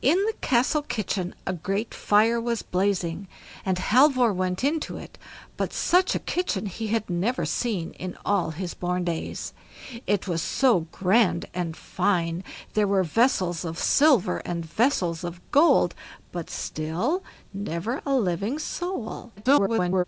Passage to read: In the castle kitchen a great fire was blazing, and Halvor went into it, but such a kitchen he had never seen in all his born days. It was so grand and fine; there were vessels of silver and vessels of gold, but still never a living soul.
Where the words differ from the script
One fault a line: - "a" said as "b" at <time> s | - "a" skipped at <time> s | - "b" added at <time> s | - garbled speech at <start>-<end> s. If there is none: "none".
- garbled speech at 19.4-20.0 s